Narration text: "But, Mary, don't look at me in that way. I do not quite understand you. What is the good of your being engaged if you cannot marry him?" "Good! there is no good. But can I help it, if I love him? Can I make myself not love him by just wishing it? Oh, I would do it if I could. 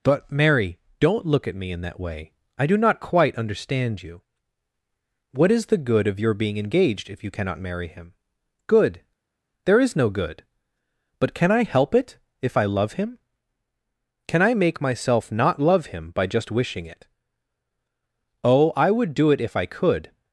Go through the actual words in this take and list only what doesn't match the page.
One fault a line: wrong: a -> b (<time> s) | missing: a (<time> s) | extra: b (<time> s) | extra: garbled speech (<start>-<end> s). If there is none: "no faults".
no faults